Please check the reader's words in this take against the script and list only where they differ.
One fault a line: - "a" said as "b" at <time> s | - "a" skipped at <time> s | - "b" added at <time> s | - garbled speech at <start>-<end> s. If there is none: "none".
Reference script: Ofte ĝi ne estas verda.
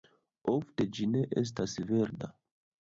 none